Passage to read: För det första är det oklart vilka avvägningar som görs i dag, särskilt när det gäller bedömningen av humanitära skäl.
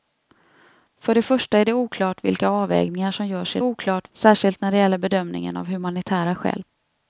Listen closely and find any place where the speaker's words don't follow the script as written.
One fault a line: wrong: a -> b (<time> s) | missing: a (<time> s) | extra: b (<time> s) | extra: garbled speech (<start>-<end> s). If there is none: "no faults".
wrong: dag -> oklart (3.6 s)